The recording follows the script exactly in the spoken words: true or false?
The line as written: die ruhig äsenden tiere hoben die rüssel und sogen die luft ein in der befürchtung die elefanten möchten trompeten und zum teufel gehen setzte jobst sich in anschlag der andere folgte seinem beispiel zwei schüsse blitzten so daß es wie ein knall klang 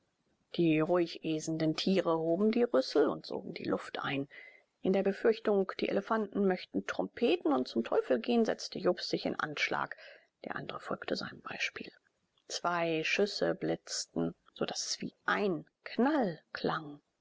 true